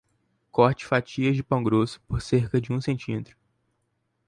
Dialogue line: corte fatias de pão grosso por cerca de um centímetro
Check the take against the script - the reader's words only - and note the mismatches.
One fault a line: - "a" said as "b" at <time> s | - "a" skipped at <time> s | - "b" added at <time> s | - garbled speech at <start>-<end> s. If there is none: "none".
none